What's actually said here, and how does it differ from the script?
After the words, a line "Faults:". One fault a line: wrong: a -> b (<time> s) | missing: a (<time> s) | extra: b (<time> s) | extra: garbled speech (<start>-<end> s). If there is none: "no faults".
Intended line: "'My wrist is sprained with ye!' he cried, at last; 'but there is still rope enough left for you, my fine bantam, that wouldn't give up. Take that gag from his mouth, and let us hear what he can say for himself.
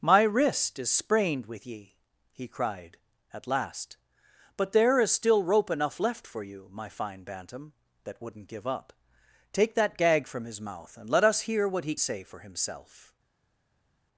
"'My wrist is sprained with ye!' he cried, at last; 'but there is still rope enough left for you, my fine bantam, that wouldn't give up. Take that gag from his mouth, and let us hear what he say for himself.
Faults:
missing: can (11.9 s)